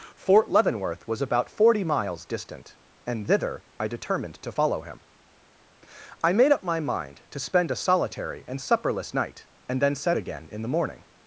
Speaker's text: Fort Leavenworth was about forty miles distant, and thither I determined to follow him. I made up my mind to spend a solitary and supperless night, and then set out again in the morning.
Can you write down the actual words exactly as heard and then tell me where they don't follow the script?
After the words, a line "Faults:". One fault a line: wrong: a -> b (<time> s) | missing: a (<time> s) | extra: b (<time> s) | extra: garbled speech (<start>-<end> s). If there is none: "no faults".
Fort Leavenworth was about forty miles distant, and thither I determined to follow him. I made up my mind to spend a solitary and supperless night, and then set again in the morning.
Faults:
missing: out (10.2 s)